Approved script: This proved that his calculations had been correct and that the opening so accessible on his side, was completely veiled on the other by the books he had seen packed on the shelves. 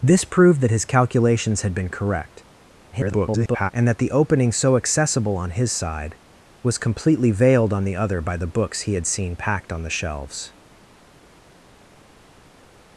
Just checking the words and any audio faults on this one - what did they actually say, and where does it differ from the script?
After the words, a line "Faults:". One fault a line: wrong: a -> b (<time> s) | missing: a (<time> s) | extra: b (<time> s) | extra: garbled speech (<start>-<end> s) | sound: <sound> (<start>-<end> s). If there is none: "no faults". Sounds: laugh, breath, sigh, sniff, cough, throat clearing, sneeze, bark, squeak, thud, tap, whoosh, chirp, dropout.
This proved that his calculations had been correct [garbled] and that the opening so accessible on his side, was completely veiled on the other by the books he had seen packed on the shelves.
Faults:
extra: garbled speech (2.9-3.7 s)